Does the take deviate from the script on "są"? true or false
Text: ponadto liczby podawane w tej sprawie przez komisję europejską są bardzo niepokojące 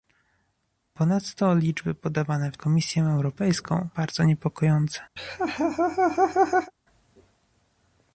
true